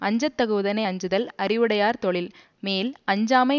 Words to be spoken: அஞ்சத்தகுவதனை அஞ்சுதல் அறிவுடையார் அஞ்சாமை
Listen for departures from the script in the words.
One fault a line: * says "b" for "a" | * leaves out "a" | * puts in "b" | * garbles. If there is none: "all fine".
* puts in "தொழில் மேல்"